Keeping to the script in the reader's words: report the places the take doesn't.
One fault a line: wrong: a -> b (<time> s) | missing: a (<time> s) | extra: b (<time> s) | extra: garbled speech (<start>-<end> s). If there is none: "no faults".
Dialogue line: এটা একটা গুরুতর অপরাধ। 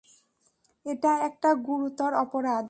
no faults